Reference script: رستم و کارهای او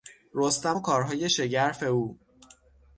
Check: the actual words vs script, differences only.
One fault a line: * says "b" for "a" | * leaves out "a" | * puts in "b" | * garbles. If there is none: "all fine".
* puts in "شگرف"